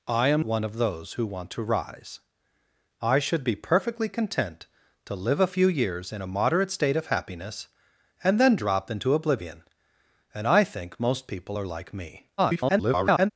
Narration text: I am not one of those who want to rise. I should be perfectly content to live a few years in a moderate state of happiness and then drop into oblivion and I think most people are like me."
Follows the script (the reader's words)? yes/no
no